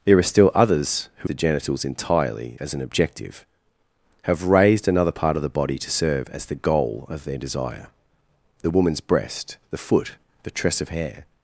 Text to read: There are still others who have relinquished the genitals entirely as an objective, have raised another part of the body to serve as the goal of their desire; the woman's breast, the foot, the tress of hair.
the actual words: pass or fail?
fail